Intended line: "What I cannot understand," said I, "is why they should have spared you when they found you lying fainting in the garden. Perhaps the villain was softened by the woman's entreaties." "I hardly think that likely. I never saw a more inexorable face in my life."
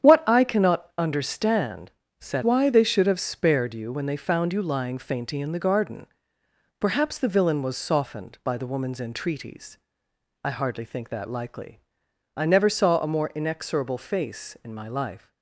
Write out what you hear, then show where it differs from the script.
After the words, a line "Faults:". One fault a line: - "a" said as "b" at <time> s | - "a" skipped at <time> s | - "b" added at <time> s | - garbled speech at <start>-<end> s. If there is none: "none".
"What I cannot understand," said why they should have spared you when they found you lying fainting in the garden. Perhaps the villain was softened by the woman's entreaties." "I hardly think that likely. I never saw a more inexorable face in my life."
Faults:
- "I is" skipped at 2.4 s